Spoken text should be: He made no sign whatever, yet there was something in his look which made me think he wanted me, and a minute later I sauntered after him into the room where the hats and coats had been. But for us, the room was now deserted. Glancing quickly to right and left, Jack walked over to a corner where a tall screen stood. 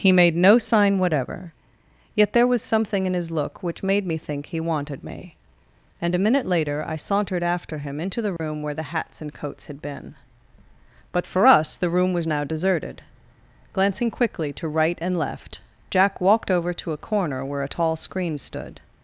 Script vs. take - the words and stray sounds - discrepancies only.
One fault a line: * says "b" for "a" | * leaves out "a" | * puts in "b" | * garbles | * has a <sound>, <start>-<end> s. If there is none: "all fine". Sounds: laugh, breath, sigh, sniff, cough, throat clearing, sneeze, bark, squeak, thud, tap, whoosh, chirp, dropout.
* has a dropout, 8.4-8.4 s